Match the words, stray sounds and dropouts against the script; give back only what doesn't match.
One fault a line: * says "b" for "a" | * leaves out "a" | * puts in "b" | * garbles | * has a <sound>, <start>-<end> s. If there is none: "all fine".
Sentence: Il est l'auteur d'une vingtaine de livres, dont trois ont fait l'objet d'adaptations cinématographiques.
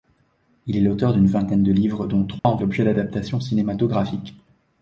* has a dropout, 2.4-2.4 s
* leaves out "fait"